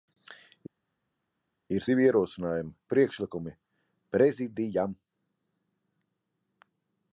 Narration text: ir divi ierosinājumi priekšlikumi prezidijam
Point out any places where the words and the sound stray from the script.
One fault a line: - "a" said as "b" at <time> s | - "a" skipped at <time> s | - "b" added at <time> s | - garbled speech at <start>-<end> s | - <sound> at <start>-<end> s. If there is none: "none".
none